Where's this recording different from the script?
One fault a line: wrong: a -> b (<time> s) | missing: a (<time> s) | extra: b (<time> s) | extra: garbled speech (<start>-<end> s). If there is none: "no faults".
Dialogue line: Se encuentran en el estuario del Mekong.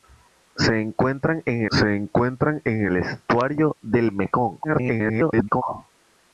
extra: se encuentran en (1.7 s)
extra: garbled speech (4.6-5.6 s)